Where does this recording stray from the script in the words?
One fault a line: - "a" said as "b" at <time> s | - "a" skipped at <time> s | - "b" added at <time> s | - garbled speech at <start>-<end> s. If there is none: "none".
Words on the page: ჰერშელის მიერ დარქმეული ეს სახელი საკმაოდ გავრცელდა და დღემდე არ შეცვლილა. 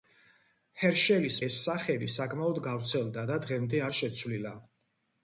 - "მიერ დარქმეული" skipped at 1.4 s